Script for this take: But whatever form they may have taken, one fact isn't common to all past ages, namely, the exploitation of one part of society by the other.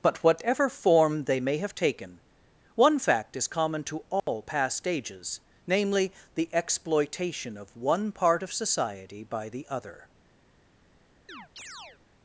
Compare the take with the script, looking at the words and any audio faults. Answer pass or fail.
fail